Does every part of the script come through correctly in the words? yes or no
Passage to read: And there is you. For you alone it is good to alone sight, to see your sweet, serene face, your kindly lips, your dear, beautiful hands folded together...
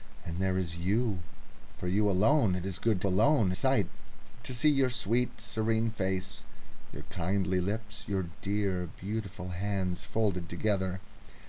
yes